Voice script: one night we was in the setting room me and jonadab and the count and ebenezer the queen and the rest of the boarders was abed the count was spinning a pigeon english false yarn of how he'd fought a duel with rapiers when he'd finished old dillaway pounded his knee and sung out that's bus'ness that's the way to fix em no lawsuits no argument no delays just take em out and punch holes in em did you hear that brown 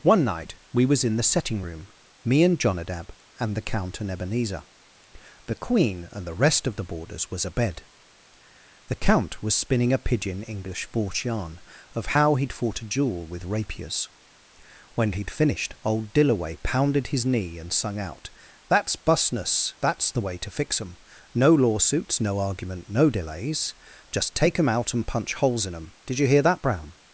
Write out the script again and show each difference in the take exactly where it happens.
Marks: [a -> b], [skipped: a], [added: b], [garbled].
one night we was in the setting room me and jonadab and the count and ebenezer the queen and the rest of the boarders was abed the count was spinning a pigeon english false yarn of how he'd fought a duel with rapiers when he'd finished old dillaway pounded his knee and sung out that's bus'ness that's the way to fix em no lawsuits no argument no delays just take em out and punch holes in em did you hear that brown